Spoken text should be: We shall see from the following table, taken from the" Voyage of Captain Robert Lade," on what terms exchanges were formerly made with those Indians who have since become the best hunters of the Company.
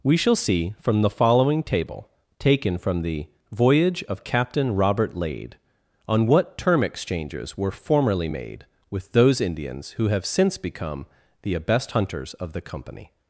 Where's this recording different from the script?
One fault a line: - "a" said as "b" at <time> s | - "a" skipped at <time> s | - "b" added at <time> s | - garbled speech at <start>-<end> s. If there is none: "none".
- "terms" said as "term" at 6.6 s